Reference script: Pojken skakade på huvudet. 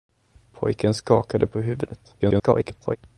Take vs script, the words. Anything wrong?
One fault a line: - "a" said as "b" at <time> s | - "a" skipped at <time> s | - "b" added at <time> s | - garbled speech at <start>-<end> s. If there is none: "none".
- garbled speech at 2.2-3.0 s